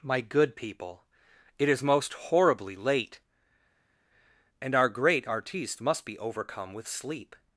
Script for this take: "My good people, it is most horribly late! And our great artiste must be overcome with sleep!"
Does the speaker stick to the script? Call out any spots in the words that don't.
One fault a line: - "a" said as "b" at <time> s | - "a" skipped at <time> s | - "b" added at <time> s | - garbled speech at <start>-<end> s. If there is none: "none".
none